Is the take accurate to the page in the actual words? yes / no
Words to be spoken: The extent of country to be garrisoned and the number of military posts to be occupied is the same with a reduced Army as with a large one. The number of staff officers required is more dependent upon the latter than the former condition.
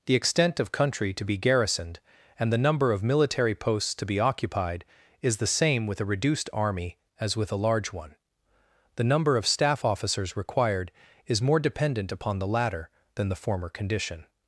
yes